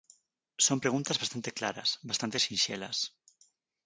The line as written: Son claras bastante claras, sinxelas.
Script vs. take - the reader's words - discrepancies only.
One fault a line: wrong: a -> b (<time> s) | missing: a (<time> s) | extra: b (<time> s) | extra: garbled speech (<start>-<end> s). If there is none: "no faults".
wrong: claras -> preguntas (0.8 s)
extra: bastante (2.1 s)